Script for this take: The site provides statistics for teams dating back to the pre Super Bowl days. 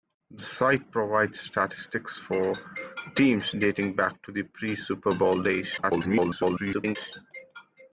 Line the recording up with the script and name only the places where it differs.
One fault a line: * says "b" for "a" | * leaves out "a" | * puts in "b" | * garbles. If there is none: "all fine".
* garbles